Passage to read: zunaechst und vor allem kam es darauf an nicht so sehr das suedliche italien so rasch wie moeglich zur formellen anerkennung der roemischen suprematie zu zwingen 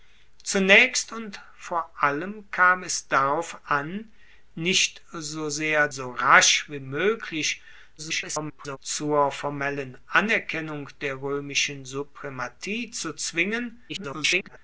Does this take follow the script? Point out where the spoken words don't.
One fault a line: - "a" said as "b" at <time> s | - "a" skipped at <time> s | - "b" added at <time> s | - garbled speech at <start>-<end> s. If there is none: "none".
- "das suedliche italien" skipped at 5.9 s
- garbled speech at 8.0-8.8 s
- garbled speech at 13.9-14.6 s